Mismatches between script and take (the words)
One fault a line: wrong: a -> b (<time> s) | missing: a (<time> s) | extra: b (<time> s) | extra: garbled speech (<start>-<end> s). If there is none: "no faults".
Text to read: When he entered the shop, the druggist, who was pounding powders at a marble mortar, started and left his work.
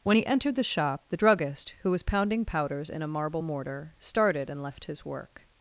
wrong: at -> in (2.9 s)